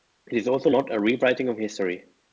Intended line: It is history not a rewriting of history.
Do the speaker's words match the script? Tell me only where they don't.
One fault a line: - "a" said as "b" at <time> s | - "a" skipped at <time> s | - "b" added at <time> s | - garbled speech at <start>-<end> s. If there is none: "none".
- "history" said as "also" at 0.5 s